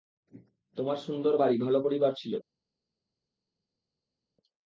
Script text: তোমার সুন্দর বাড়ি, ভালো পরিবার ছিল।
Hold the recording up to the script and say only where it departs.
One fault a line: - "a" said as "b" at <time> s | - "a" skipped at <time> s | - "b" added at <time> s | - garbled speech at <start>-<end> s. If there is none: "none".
none